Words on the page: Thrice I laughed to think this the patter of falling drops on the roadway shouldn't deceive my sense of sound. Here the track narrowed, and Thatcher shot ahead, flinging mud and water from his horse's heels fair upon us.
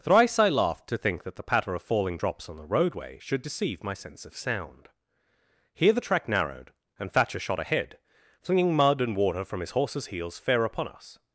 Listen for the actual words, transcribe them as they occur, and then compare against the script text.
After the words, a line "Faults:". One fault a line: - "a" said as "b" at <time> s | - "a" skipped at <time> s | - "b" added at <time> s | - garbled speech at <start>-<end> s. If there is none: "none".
Thrice I laughed to think that the patter of falling drops on the roadway should deceive my sense of sound. Here the track narrowed, and Thatcher shot ahead, flinging mud and water from his horse's heels fair upon us.
Faults:
- "this" said as "that" at 1.2 s
- "shouldn't" said as "should" at 3.2 s